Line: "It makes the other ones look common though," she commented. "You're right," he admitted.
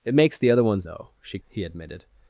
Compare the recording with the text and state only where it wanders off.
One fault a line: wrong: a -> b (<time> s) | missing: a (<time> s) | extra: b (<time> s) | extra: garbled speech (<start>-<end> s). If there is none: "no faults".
missing: look common (0.9 s)
missing: commented You're right (1.4 s)